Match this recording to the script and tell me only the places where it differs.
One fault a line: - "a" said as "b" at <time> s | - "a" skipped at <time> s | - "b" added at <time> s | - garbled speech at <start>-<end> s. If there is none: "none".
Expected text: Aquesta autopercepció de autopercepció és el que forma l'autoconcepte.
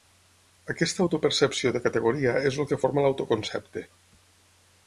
- "autopercepció" said as "categoria" at 1.9 s